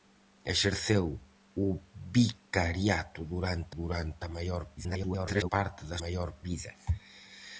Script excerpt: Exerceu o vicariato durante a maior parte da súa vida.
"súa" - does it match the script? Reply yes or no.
no